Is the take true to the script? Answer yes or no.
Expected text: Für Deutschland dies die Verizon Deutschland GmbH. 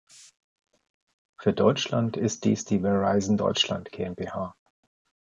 no